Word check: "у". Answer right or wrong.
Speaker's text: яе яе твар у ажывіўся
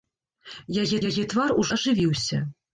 right